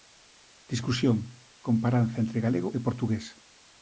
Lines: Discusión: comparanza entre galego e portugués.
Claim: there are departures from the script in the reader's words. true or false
false